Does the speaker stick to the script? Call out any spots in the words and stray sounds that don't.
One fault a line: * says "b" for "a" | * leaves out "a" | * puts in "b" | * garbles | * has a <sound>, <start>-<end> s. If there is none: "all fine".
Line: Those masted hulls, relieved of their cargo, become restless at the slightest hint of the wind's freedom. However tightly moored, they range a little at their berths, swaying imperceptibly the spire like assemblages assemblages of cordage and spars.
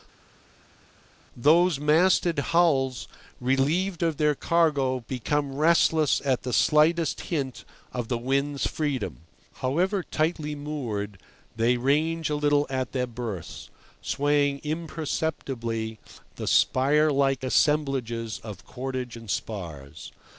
* leaves out "assemblages"